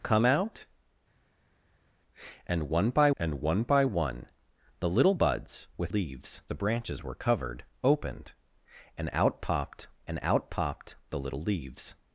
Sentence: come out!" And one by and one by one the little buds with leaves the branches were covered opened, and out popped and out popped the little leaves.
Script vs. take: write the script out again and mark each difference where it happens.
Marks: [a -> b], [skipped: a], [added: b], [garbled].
come out!" And one by and one by one the little buds with leaves the branches were covered opened, and out popped and out popped the little leaves.